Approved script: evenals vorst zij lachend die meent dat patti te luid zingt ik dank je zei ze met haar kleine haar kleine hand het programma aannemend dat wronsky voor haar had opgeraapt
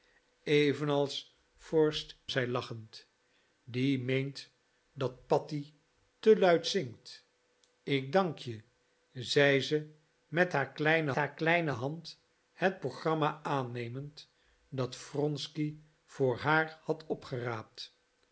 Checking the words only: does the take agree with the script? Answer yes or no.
yes